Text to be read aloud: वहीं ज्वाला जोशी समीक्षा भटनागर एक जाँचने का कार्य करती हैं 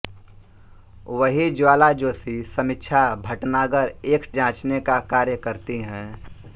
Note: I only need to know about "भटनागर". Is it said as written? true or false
true